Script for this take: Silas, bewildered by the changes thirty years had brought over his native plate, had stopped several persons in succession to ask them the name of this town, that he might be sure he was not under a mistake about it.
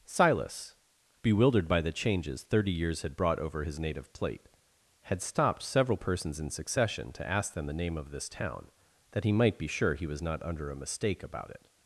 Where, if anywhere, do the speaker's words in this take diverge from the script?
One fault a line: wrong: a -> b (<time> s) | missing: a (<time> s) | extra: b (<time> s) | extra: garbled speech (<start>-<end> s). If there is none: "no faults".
no faults